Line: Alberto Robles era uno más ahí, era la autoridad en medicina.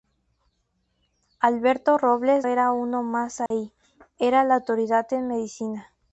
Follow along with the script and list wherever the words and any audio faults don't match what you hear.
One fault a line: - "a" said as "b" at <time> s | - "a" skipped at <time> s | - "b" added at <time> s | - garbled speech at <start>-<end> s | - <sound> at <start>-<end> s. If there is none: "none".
- dropout at 3.5-3.5 s